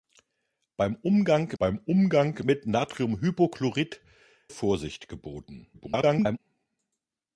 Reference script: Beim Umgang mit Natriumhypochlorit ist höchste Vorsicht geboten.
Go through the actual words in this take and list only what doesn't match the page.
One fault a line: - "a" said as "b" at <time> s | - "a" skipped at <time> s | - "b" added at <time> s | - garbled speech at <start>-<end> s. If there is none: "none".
- "beim Umgang" added at 1.6 s
- "ist höchste" skipped at 4.0 s
- garbled speech at 5.7-6.4 s